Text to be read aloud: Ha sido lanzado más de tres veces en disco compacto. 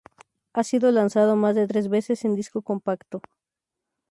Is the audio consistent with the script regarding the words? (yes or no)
yes